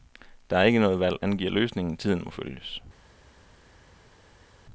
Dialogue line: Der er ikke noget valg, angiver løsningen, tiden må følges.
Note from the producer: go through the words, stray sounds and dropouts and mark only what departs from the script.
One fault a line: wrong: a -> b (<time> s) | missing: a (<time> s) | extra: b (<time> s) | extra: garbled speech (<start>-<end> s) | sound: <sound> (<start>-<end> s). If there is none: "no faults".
no faults